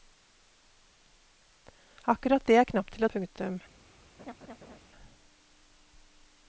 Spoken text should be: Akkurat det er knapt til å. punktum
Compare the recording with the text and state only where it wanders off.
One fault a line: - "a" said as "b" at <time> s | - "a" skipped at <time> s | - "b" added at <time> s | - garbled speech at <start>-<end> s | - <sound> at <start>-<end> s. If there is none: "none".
- laugh at 4.2-4.8 s